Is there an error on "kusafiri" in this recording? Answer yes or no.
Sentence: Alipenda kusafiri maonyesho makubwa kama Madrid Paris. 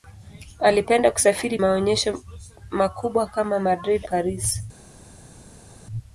no